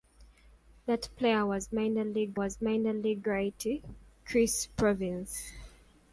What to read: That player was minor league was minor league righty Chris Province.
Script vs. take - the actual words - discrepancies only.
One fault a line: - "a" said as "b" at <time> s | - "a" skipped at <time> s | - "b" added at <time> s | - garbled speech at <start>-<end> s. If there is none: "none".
none